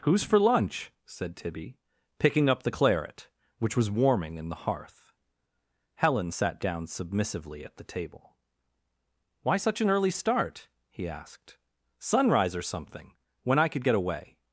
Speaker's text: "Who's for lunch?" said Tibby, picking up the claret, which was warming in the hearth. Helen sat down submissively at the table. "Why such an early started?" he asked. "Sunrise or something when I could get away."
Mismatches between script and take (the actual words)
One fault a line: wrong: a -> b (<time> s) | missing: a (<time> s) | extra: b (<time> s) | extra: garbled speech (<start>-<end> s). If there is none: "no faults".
wrong: started -> start (10.1 s)